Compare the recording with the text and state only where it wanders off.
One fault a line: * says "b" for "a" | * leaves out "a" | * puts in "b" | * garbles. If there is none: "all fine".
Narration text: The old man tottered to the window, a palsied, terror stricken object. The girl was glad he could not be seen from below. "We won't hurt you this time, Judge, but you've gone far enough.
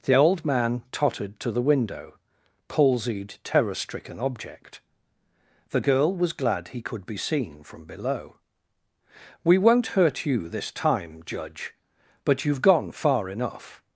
* leaves out "a"
* leaves out "not"